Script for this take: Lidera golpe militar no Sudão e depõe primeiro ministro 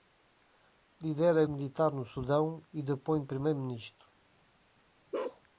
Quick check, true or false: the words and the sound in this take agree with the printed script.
false